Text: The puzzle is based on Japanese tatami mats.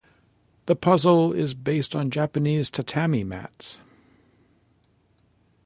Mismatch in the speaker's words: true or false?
false